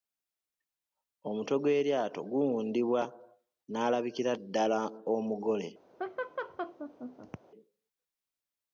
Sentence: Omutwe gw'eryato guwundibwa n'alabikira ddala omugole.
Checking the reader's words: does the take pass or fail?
pass